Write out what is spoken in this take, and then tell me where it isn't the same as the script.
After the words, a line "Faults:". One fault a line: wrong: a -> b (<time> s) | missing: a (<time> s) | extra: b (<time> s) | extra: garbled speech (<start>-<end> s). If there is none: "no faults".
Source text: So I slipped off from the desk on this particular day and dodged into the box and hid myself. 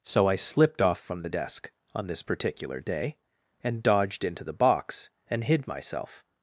So I slipped off from the desk on this particular day and dodged into the box and hid myself.
Faults:
no faults